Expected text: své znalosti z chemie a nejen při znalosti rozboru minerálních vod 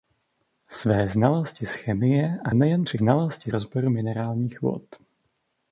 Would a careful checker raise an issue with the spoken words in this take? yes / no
no